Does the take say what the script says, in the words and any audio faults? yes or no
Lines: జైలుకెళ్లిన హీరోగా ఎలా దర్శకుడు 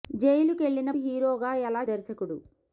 yes